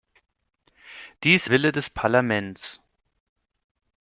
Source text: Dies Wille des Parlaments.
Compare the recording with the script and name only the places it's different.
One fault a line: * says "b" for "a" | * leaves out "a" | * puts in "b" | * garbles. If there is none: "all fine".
all fine